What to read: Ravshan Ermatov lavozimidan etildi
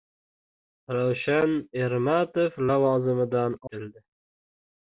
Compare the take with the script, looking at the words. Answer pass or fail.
pass